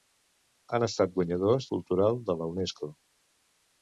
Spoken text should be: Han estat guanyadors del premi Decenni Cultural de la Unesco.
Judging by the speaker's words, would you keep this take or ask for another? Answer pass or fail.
fail